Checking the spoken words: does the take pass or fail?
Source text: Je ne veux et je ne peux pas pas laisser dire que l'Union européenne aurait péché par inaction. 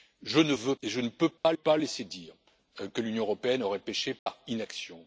pass